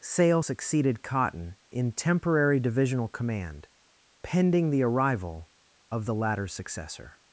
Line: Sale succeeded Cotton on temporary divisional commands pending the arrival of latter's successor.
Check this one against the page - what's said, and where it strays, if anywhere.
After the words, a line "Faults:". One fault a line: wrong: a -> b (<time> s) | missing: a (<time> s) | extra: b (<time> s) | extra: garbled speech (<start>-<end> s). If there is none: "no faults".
Sale succeeded Cotton in temporary divisional command pending the arrival of the latter's successor.
Faults:
wrong: on -> in (1.7 s)
wrong: commands -> command (3.1 s)
extra: the (6.1 s)